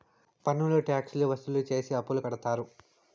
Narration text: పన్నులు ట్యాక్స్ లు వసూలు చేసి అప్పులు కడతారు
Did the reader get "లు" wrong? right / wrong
right